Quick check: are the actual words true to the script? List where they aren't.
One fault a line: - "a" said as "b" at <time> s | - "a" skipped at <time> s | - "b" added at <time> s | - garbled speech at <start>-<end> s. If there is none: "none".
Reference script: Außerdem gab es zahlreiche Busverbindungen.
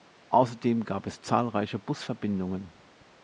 none